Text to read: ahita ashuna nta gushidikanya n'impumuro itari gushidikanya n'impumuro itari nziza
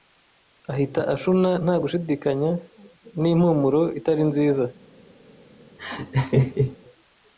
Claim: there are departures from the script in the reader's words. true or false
true